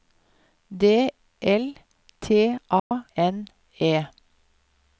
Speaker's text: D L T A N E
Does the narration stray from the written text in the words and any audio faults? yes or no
yes